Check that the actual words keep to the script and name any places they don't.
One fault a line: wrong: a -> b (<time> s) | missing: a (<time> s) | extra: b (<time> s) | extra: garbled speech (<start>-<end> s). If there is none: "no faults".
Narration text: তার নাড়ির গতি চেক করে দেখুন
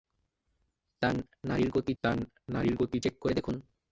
extra: তার নাড়ির গতি (2.0 s)